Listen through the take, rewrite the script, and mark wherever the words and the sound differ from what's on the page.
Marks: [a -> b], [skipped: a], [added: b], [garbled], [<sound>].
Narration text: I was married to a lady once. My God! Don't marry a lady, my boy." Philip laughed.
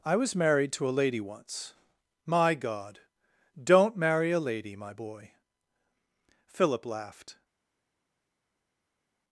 I was married to a lady once. My God! Don't marry a lady, my boy." Philip laughed.